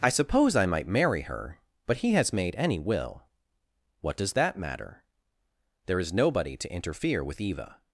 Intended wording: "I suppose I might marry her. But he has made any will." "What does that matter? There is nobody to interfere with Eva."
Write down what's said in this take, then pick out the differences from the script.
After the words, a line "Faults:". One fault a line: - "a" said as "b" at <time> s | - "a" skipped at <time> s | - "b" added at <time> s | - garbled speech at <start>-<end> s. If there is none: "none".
"I suppose I might marry her. But he has made any will." "What does that matter? There is nobody to interfere with Eva."
Faults:
none